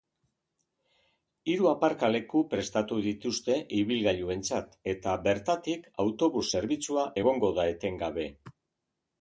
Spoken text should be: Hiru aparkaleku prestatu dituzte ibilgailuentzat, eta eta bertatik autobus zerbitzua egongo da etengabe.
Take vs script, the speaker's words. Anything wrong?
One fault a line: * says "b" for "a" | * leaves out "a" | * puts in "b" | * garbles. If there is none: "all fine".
* leaves out "eta"